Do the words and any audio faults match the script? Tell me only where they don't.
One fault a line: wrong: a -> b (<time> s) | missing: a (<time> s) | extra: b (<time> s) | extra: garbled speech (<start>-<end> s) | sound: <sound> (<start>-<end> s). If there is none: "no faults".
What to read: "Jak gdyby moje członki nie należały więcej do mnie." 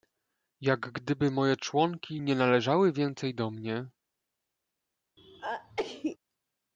sound: sneeze (5.2-6.2 s)